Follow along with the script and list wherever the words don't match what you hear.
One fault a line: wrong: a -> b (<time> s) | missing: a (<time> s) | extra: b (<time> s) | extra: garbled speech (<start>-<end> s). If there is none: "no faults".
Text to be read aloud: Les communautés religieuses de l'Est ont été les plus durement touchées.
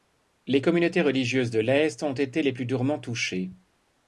no faults